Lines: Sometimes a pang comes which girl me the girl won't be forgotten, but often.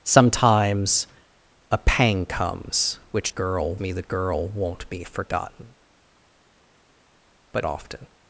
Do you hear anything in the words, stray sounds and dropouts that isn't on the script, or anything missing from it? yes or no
no